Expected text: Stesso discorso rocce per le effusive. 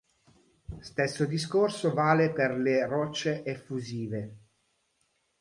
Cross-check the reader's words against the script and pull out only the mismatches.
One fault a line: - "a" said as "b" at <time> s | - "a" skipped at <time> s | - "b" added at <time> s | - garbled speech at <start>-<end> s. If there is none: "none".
- "rocce" said as "vale" at 1.9 s
- "rocce" added at 2.9 s